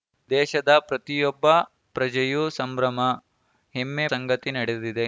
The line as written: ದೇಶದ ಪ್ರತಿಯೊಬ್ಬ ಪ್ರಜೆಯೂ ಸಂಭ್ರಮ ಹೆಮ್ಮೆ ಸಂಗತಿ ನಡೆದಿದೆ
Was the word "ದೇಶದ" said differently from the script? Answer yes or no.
no